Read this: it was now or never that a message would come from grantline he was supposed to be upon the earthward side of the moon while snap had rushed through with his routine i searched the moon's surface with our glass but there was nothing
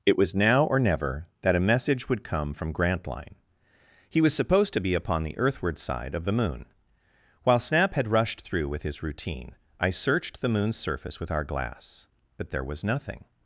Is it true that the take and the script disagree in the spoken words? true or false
false